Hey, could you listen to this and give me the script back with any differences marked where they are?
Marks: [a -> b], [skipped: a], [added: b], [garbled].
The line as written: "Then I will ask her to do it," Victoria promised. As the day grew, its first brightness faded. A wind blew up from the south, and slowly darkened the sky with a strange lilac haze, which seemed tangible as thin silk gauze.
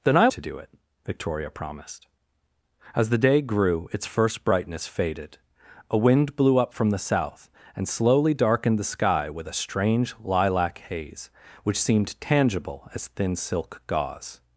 "Then I [skipped: will ask her] to do it," Victoria promised. As the day grew, its first brightness faded. A wind blew up from the south, and slowly darkened the sky with a strange lilac haze, which seemed tangible as thin silk gauze.